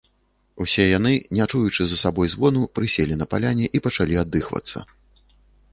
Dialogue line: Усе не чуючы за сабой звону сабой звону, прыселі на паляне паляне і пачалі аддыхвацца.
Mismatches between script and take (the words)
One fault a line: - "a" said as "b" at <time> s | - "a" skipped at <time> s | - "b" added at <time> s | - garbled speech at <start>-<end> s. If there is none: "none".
- "яны" added at 1.0 s
- "сабой звону" skipped at 2.6 s
- "паляне" skipped at 3.7 s